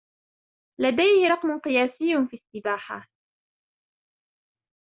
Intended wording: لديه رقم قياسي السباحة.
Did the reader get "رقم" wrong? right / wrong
right